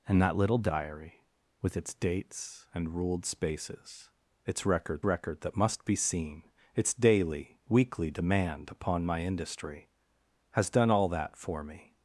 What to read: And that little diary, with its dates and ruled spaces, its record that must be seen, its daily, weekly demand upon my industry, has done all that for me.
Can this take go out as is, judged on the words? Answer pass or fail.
fail